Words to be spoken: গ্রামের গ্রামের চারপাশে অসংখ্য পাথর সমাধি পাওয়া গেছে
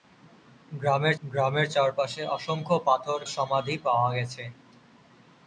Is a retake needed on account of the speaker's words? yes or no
no